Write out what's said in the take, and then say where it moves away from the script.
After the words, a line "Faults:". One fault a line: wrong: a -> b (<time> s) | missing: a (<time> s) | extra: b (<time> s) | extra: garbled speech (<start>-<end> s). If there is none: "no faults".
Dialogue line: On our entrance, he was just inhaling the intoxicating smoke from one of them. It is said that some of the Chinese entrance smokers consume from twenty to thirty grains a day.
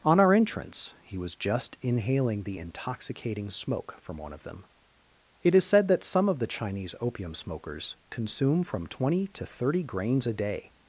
On our entrance, he was just inhaling the intoxicating smoke from one of them. It is said that some of the Chinese opium smokers consume from twenty to thirty grains a day.
Faults:
wrong: entrance -> opium (7.0 s)